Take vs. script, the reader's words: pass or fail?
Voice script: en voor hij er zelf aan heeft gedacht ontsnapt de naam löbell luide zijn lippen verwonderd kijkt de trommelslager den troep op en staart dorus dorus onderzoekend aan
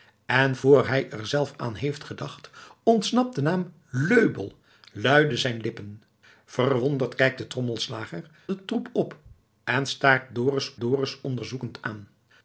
pass